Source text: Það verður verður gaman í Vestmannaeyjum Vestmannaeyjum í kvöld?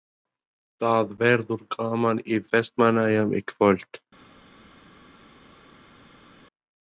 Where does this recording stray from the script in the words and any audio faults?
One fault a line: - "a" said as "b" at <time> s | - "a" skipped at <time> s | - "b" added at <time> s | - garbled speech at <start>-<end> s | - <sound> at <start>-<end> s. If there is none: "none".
- "verður" skipped at 1.6 s
- "Vestmannaeyjum" skipped at 3.4 s